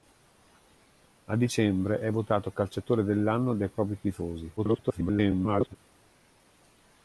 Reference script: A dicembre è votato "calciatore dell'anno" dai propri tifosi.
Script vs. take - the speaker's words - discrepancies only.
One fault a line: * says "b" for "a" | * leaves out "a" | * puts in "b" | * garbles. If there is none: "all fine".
* garbles